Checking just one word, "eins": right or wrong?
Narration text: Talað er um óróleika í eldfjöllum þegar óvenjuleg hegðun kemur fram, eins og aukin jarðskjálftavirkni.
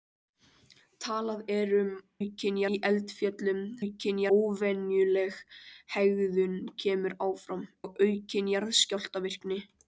wrong